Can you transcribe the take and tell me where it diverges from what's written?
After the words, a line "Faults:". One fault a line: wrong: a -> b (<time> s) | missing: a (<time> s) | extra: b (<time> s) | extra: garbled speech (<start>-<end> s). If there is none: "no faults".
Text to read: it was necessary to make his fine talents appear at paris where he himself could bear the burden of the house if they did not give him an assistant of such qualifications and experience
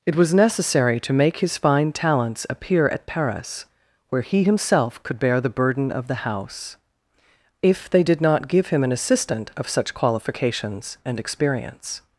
it was necessary to make his fine talents appear at paris where he himself could bear the burden of the house if they did not give him an assistant of such qualifications and experience
Faults:
no faults